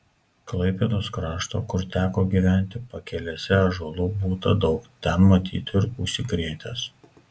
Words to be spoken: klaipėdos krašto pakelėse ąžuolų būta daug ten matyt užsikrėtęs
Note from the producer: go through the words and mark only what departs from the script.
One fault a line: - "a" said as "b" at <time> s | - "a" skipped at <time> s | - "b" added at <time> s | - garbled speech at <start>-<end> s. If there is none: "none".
- "kur teko gyventi" added at 1.7 s
- "ir" added at 5.8 s